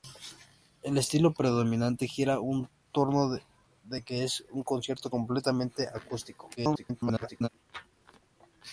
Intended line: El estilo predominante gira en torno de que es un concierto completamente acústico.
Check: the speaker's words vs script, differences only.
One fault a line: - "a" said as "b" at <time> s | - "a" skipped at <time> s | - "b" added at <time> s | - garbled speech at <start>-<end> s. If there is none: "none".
- garbled speech at 6.6-7.5 s